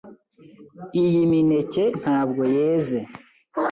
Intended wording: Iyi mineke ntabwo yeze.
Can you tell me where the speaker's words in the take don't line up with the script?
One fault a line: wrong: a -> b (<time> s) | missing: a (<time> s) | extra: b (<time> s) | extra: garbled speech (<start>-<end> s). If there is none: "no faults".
no faults